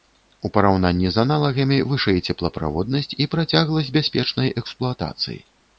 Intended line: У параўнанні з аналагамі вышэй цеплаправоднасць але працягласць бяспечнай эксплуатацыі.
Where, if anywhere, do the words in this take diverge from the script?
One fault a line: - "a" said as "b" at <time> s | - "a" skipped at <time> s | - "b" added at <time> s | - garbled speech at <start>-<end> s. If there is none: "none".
- "але" said as "і" at 3.2 s